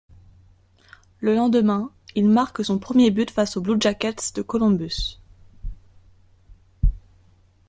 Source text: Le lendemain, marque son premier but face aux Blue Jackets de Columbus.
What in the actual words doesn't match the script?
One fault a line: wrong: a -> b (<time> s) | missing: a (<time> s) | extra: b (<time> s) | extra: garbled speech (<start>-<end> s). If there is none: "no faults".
extra: il (2.2 s)